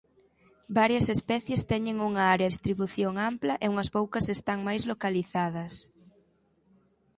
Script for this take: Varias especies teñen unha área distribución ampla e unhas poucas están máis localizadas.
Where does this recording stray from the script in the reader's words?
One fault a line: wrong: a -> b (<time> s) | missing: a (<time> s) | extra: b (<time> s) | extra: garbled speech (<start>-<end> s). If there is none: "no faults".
no faults